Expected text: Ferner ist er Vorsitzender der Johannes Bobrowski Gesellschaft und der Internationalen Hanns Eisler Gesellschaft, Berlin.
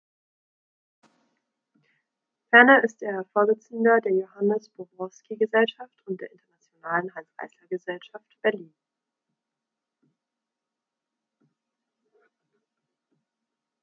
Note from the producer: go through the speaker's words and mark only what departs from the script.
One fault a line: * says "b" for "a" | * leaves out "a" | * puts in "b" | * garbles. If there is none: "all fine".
all fine